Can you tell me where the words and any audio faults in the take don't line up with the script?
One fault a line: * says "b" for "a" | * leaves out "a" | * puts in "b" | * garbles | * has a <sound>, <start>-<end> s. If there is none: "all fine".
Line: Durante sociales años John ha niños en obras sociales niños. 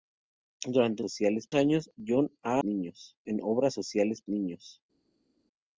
all fine